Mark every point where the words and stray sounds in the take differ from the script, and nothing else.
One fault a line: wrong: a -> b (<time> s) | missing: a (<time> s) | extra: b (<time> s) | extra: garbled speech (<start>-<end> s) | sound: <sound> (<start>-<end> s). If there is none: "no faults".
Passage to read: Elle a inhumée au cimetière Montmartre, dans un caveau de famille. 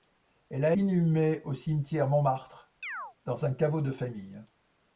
sound: chirp (2.8-3.1 s)